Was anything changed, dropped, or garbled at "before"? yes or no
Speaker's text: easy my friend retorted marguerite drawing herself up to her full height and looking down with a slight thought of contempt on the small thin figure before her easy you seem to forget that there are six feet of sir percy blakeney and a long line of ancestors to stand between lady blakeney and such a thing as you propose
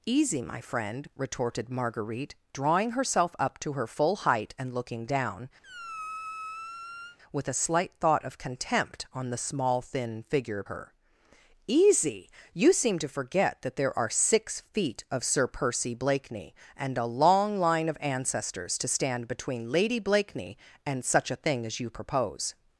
yes